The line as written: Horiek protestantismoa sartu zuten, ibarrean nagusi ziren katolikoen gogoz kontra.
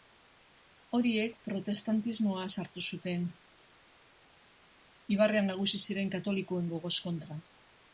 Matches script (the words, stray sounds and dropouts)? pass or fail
pass